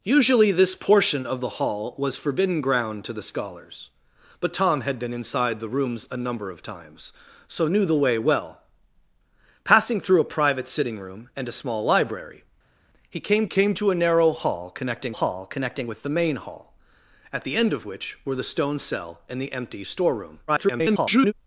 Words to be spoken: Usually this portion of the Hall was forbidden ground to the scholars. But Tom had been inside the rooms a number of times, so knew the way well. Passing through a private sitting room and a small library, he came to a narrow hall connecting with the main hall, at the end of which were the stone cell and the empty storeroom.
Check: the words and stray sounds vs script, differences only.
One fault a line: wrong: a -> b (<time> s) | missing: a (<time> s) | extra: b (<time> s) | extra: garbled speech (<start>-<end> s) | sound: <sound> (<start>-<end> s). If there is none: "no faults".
extra: came (13.5 s)
extra: hall connecting (15.1 s)
extra: garbled speech (20.5-21.3 s)